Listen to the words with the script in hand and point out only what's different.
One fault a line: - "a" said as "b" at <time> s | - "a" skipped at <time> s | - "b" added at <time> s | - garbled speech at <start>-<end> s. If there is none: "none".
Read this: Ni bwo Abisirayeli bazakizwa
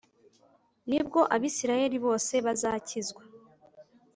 - "bose" added at 2.1 s